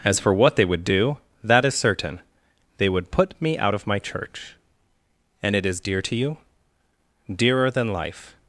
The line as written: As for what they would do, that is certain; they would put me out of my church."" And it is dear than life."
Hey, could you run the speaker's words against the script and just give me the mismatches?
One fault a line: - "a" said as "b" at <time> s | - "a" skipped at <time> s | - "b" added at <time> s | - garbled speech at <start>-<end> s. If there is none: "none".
- "to you Dearer" added at 6.0 s